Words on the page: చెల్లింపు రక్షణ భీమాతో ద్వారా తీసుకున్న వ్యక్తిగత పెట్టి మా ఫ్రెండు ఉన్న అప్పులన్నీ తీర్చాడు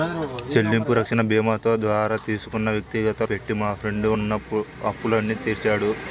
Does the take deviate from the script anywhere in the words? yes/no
no